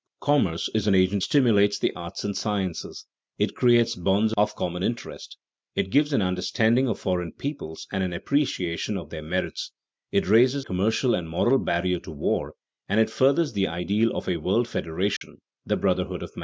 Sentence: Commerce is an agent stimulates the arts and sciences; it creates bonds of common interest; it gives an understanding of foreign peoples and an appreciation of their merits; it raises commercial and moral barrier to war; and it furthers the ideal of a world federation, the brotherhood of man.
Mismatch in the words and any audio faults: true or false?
true